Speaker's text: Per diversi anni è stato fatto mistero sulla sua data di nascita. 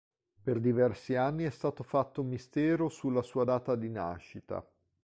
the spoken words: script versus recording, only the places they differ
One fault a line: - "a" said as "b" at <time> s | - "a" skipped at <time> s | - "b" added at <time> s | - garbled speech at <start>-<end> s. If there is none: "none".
none